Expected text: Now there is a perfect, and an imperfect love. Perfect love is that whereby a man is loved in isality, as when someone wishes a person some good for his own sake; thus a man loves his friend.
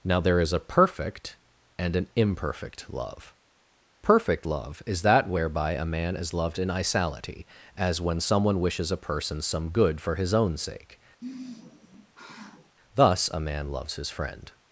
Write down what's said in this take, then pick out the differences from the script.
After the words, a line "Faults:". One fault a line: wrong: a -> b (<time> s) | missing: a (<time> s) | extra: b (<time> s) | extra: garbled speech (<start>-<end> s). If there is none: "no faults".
Now there is a perfect, and an imperfect love. Perfect love is that whereby a man is loved in isality, as when someone wishes a person some good for his own sake; thus a man loves his friend.
Faults:
no faults